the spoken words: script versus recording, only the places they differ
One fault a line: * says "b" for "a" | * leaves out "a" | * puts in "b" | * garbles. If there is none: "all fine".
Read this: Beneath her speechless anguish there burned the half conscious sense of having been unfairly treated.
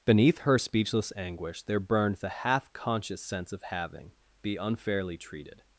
* says "be" for "been"